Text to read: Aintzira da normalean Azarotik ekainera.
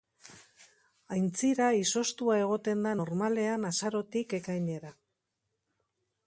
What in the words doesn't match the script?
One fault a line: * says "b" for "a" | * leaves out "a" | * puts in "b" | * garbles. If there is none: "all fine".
* puts in "izoztua egoten"